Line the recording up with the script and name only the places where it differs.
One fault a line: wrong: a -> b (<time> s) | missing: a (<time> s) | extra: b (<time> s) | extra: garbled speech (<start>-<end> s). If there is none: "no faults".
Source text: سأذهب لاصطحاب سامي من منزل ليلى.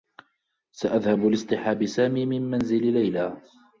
no faults